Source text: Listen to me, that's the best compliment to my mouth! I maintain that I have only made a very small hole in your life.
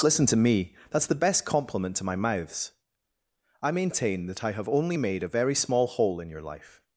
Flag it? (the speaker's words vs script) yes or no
yes